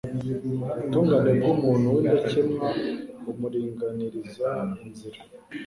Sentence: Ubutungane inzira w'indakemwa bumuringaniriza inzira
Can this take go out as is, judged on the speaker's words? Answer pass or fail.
fail